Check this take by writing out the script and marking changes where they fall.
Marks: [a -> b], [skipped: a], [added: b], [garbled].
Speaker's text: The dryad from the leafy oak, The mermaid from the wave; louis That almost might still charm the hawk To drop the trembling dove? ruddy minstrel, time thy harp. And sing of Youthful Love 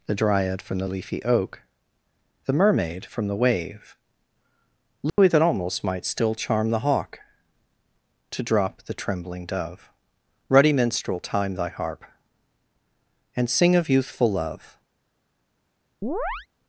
The dryad from the leafy oak, The mermaid from the wave; louis That almost might still charm the hawk To drop the trembling dove? ruddy minstrel, time thy harp. And sing of Youthful Love